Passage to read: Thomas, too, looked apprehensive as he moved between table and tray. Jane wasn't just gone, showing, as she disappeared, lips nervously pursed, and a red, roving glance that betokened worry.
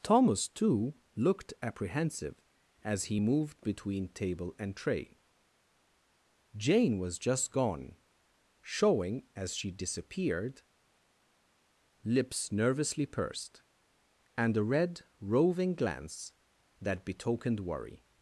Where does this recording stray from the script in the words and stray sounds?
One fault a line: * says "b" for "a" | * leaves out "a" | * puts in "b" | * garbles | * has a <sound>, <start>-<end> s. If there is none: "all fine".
* says "was" for "wasn't"